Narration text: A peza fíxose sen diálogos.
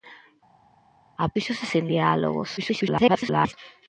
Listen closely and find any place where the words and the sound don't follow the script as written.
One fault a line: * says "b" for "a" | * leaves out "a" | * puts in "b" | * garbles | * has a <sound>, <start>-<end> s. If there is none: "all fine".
* leaves out "peza"
* garbles